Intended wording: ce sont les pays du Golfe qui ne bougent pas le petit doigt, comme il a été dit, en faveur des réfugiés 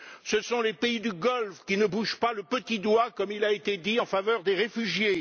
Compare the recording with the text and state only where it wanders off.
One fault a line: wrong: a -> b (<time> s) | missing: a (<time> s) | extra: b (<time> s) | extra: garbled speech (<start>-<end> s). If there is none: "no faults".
no faults